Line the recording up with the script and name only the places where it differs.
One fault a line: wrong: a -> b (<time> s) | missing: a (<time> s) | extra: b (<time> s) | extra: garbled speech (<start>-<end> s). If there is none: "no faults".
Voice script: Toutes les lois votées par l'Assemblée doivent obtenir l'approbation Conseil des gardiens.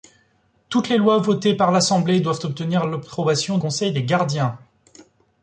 no faults